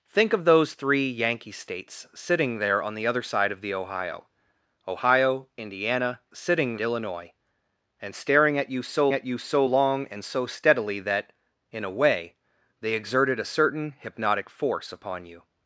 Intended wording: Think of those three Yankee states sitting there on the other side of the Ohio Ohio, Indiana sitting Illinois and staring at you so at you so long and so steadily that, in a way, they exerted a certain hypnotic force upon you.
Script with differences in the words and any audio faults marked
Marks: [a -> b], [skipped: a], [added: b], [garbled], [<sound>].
Think of those three Yankee states sitting there on the other side of the Ohio Ohio, Indiana sitting Illinois and staring at you so at you so long and so steadily that, in a way, they exerted a certain hypnotic force upon you.